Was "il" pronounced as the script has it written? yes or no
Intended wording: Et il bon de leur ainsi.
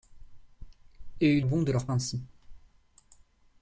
yes